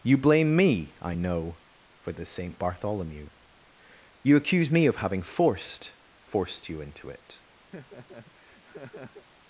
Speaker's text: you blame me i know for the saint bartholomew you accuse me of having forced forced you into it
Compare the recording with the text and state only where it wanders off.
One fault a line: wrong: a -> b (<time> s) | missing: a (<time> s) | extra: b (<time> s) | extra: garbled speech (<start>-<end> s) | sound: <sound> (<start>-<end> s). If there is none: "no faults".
sound: laugh (7.7-9.3 s)